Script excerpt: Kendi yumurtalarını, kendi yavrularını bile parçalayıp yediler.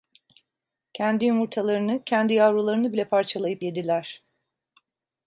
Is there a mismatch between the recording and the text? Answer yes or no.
no